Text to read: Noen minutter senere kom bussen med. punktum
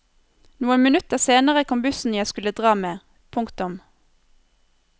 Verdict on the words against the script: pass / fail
fail